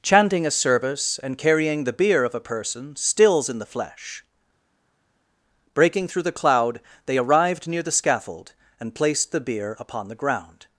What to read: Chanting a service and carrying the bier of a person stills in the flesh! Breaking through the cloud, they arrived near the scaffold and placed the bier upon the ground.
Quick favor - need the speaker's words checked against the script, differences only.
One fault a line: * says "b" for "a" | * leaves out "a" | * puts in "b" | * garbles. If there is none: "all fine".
all fine